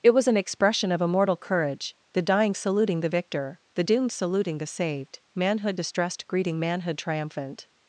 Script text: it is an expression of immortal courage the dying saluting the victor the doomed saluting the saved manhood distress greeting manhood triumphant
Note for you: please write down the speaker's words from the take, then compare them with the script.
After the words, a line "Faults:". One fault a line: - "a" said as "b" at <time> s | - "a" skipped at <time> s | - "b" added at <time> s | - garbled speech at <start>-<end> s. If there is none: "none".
it was an expression of immortal courage the dying saluting the victor the doomed saluting the saved manhood distressed greeting manhood triumphant
Faults:
- "is" said as "was" at 0.1 s
- "distress" said as "distressed" at 5.7 s